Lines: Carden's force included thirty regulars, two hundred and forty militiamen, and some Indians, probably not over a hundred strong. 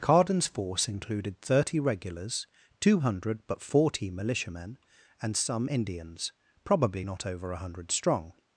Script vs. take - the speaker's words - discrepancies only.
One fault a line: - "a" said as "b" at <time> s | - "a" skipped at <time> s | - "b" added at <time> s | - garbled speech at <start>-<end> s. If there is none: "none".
- "and" said as "but" at 3.5 s